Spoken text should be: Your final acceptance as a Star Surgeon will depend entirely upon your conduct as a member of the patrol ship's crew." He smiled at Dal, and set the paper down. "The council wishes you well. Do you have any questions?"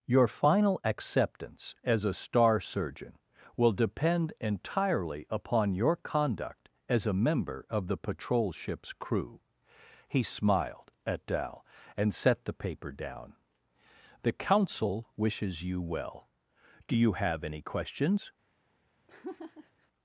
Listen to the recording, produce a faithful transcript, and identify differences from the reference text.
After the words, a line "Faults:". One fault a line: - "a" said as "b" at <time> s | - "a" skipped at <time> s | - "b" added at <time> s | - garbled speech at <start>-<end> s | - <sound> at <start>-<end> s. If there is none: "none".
Your final acceptance as a Star Surgeon will depend entirely upon your conduct as a member of the patrol ship's crew." He smiled at Dal, and set the paper down. "The council wishes you well. Do you have any questions?"
Faults:
- laugh at 19.1-19.9 s